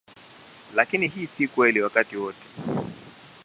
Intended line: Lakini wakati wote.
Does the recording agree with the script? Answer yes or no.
no